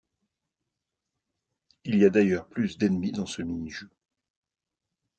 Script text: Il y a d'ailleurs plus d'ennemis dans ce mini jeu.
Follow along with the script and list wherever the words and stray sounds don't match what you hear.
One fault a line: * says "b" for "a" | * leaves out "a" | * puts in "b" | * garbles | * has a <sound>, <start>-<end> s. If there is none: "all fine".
all fine